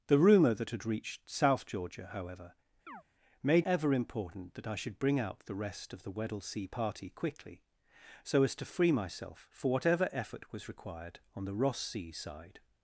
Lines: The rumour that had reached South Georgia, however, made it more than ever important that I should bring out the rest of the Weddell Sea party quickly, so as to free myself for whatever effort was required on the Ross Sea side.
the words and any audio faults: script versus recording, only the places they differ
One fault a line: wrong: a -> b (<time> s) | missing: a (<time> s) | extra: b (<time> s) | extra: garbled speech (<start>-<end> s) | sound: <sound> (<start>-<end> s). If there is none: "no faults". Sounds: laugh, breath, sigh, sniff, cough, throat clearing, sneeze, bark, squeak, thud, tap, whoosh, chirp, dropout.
sound: chirp (2.9-3.0 s)
missing: it more than (3.7 s)